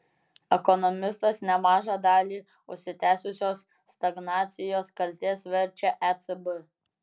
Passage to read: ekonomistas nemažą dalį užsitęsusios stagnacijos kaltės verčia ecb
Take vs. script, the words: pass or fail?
pass